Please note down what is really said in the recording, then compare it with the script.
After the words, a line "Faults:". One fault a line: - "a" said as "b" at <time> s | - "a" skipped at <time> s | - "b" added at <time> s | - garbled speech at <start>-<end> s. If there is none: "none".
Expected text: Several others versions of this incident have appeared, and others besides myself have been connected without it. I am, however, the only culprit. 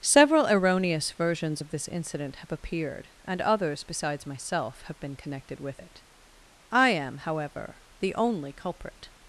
Several erroneous versions of this incident have appeared, and others besides myself have been connected with it. I am, however, the only culprit.
Faults:
- "others" said as "erroneous" at 0.5 s
- "without" said as "with" at 5.6 s